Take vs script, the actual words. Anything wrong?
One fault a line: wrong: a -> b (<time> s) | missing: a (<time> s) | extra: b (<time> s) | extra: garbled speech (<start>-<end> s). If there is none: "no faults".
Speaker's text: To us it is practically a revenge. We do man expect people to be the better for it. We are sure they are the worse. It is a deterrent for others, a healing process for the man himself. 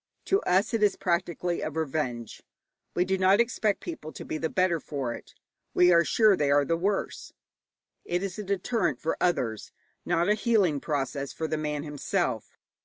wrong: man -> not (3.2 s)
extra: not (10.0 s)